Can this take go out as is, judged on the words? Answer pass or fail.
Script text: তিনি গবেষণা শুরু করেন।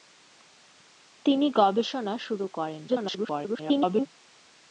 fail